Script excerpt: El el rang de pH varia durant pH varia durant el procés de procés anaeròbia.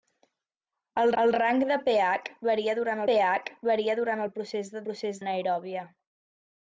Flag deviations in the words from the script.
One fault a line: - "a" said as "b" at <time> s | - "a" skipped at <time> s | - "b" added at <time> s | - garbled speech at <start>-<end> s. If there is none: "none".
none